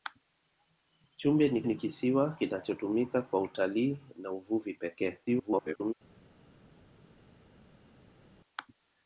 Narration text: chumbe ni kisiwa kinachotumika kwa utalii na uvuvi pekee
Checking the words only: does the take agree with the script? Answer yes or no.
no